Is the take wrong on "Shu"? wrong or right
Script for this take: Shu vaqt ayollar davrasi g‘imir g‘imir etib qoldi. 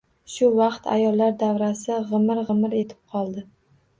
right